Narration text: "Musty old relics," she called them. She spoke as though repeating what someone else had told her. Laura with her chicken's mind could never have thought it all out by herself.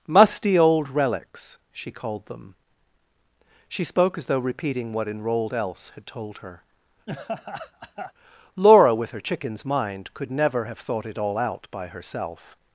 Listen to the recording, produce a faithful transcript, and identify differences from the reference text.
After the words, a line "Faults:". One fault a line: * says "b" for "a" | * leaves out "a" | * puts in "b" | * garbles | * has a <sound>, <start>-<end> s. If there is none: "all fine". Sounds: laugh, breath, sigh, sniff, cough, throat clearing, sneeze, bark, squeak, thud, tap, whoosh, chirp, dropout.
"Musty old relics," she called them. She spoke as though repeating what enrolled else had told her. Laura with her chicken's mind could never have thought it all out by herself.
Faults:
* says "enrolled" for "someone"
* has a laugh, 7.1-8.1 s